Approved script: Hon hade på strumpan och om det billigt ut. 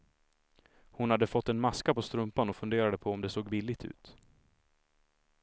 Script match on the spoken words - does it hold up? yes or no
no